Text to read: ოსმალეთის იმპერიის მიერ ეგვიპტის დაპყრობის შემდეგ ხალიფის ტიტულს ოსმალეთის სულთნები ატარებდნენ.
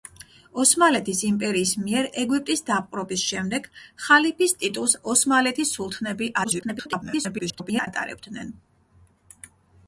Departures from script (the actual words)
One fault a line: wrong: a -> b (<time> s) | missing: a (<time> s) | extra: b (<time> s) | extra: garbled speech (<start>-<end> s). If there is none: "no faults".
extra: garbled speech (6.4-7.9 s)